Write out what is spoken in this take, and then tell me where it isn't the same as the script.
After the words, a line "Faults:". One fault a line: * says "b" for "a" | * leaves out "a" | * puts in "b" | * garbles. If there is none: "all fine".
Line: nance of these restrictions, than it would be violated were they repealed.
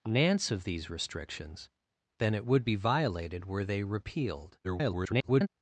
nance of these restrictions, than it would be violated were they repealed. [garbled]
Faults:
* garbles